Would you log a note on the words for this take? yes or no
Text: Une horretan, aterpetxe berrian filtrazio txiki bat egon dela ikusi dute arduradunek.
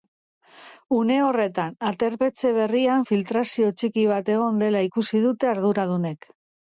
no